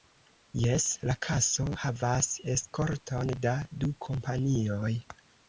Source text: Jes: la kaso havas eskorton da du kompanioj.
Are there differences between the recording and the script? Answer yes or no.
no